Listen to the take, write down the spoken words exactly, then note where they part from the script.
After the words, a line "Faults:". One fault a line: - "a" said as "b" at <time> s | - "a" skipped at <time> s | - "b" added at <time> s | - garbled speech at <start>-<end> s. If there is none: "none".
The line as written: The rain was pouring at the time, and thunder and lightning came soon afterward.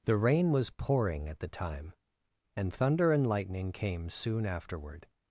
The rain was pouring at the time, and thunder and lightning came soon afterward.
Faults:
none